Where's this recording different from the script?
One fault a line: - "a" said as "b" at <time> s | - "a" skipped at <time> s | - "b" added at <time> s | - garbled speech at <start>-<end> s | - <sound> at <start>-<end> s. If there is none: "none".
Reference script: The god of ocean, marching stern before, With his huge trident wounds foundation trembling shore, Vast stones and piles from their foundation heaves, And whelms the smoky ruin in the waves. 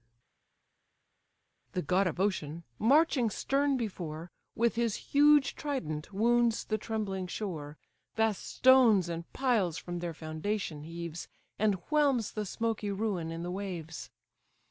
- "foundation" said as "the" at 6.6 s